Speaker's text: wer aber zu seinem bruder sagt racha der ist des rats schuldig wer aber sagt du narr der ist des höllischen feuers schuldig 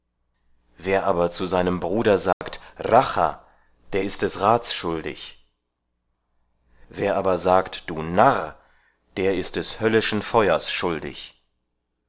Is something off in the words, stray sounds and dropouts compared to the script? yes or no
yes